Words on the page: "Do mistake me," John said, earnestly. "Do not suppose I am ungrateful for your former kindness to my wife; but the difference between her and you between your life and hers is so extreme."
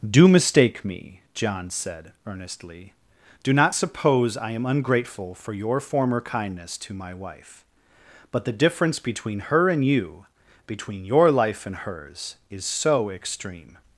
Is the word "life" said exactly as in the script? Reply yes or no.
yes